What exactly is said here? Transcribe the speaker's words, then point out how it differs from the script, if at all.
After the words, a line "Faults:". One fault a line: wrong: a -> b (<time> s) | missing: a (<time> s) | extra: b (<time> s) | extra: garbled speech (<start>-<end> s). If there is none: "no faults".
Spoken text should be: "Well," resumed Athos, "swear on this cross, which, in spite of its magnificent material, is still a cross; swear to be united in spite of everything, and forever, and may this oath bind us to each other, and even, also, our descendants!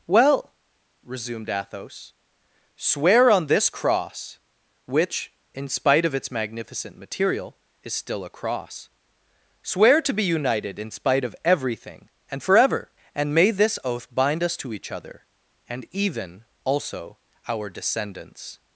"Well," resumed Athos, "swear on this cross, which, in spite of its magnificent material, is still a cross; swear to be united in spite of everything, and forever, and may this oath bind us to each other, and even, also, our descendants!
Faults:
no faults